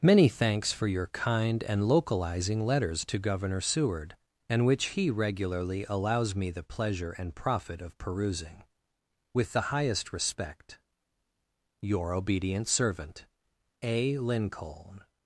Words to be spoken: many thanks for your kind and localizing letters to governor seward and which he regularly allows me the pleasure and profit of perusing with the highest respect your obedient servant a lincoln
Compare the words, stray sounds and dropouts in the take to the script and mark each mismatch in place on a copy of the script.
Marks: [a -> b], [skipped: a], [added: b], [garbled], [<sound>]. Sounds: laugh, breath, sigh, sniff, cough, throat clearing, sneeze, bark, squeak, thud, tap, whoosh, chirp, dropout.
many thanks for your kind and localizing letters to governor seward and which he regularly allows me the pleasure and profit of perusing with the highest respect your obedient servant a lincoln